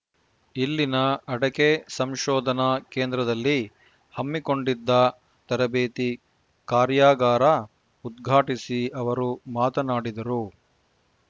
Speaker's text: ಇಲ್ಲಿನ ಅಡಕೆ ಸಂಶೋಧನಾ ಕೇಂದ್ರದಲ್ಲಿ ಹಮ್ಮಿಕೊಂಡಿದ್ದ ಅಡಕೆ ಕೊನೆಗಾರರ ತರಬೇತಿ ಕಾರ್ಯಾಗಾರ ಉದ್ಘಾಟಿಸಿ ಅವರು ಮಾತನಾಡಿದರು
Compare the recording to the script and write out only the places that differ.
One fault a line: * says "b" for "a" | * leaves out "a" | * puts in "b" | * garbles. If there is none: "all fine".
* leaves out "ಅಡಕೆ ಕೊನೆಗಾರರ"